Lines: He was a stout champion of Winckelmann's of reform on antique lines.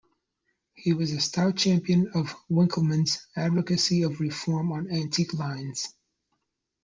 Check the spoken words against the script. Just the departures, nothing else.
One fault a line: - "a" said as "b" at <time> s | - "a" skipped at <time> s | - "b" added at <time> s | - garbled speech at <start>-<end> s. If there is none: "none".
- "advocacy" added at 3.3 s